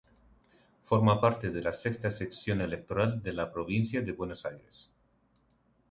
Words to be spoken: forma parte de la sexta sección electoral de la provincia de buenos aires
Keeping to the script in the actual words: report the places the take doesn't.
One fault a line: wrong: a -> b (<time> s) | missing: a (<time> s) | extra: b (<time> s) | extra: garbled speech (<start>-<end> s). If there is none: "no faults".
no faults